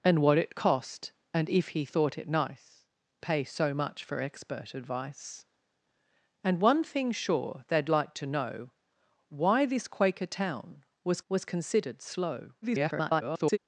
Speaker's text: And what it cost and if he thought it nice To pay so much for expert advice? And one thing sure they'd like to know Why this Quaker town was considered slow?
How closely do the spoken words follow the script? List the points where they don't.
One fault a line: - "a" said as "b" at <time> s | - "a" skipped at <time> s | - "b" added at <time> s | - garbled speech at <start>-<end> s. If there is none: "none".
- "To" skipped at 2.9 s
- "was" added at 11.3 s
- garbled speech at 12.6-13.6 s